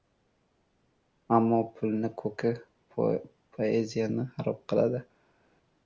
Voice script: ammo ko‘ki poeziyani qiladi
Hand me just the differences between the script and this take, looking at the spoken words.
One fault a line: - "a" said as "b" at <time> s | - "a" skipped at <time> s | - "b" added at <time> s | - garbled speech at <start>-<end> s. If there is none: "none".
- "pulni" added at 1.8 s
- "xarob" added at 4.4 s